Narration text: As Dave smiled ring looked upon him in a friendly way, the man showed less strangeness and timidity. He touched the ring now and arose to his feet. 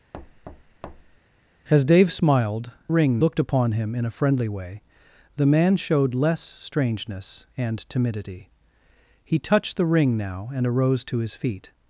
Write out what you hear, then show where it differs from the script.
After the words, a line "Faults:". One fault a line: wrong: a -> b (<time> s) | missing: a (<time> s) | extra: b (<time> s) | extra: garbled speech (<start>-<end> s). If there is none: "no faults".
As Dave smiled ring looked upon him in a friendly way, the man showed less strangeness and timidity. He touched the ring now and arose to his feet.
Faults:
no faults